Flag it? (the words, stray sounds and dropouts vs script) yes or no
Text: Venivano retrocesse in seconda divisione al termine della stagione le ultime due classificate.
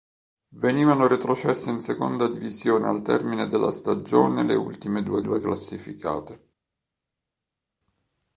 yes